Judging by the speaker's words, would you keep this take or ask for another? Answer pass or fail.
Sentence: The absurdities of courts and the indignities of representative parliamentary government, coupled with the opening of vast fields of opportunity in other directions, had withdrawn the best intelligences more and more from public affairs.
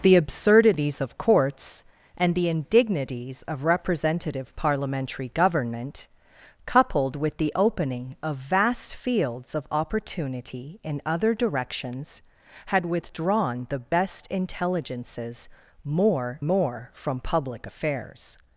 fail